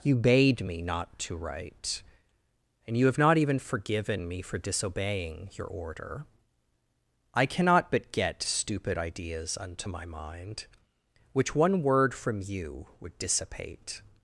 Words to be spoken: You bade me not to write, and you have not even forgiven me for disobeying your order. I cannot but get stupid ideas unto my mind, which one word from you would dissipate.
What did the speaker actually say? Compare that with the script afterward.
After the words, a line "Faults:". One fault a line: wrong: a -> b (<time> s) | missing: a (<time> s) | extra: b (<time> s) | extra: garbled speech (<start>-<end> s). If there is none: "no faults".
You bade me not to write, and you have not even forgiven me for disobeying your order. I cannot but get stupid ideas unto my mind, which one word from you would dissipate.
Faults:
no faults